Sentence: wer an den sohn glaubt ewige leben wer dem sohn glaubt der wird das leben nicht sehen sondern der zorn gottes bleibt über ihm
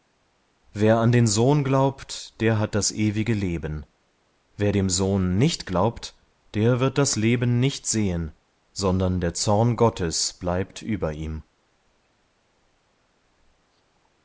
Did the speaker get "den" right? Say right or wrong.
right